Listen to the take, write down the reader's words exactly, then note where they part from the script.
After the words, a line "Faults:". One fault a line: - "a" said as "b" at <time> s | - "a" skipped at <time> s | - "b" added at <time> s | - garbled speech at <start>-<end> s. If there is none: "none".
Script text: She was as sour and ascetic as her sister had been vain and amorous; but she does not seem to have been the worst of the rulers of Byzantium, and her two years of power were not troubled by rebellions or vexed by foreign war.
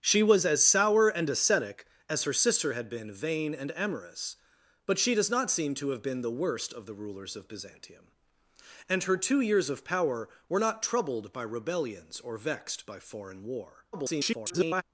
She was as sour and ascetic as her sister had been vain and amorous; but she does not seem to have been the worst of the rulers of Byzantium, and her two years of power were not troubled by rebellions or vexed by foreign war. [garbled]
Faults:
- garbled speech at 13.9-14.8 s